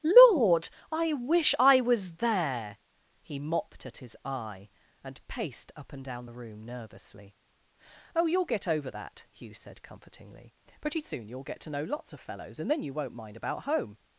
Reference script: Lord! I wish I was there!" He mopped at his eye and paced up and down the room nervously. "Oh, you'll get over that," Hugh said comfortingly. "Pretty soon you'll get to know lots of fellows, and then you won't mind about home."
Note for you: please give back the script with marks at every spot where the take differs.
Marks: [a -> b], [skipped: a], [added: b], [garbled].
Lord! I wish I was there!" He mopped at his eye and paced up and down the room nervously. "Oh, you'll get over that," Hugh said comfortingly. "Pretty soon you'll get to know lots of fellows, and then you won't mind about home."